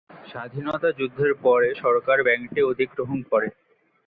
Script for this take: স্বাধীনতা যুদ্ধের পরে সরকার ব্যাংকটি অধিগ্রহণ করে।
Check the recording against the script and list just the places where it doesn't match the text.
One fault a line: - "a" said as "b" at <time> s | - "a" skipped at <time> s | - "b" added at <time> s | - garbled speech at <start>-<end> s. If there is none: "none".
none